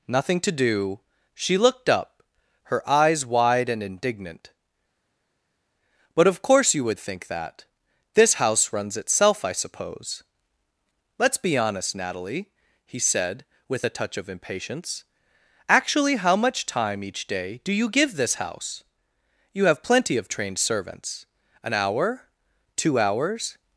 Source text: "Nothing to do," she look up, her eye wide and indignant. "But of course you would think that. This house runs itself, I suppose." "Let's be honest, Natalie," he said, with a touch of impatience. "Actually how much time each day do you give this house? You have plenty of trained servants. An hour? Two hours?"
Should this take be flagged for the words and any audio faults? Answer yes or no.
yes